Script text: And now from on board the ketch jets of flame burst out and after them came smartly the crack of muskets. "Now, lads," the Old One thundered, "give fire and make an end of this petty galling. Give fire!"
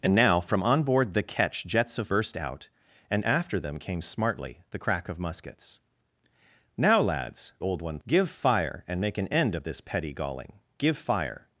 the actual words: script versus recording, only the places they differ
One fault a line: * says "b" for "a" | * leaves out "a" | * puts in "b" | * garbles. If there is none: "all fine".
* leaves out "flame"
* leaves out "the"
* leaves out "thundered"